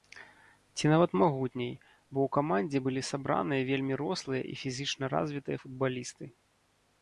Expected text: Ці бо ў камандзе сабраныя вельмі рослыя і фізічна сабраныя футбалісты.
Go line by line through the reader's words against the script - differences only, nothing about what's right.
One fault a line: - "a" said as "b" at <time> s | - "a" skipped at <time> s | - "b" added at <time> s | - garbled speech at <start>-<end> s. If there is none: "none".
- "нават магутней" added at 0.9 s
- "былі" added at 2.9 s
- "сабраныя" said as "развітыя" at 5.2 s